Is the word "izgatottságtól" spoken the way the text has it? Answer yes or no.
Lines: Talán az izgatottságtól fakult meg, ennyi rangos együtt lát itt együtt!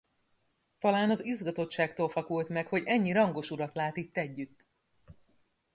yes